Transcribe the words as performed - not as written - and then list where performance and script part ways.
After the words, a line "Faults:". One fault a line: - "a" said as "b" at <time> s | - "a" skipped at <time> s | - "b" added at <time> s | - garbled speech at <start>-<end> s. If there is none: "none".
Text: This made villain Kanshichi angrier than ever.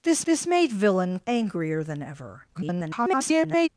This this made villain Angrier than ever. [garbled]
Faults:
- "this" added at 0.2 s
- "Kanshichi" skipped at 1.2 s
- garbled speech at 2.5-3.7 s